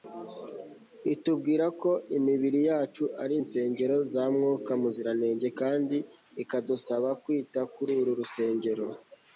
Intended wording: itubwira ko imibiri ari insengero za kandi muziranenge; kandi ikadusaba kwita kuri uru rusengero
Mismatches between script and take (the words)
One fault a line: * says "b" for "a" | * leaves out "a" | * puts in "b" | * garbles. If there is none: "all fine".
* puts in "yacu"
* says "mwuka" for "kandi"